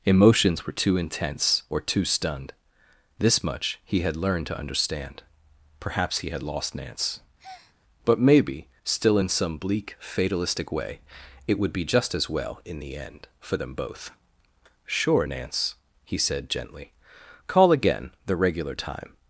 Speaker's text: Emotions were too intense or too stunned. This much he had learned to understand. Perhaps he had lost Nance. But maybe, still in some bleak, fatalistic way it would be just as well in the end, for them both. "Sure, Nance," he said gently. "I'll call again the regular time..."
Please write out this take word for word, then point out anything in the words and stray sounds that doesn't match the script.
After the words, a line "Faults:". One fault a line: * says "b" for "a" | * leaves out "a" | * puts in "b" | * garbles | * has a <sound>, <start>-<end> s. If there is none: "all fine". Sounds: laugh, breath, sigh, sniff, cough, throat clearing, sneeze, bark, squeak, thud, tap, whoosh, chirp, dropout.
Emotions were too intense or too stunned. This much he had learned to understand. Perhaps he had lost Nance. But maybe, still in some bleak, fatalistic way it would be just as well in the end, for them both. "Sure, Nance," he said gently. "call again the regular time..."
Faults:
* has a breath, 7.4-7.8 s
* leaves out "I'll"